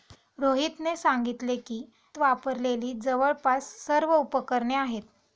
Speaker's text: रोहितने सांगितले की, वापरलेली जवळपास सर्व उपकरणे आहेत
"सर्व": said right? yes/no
yes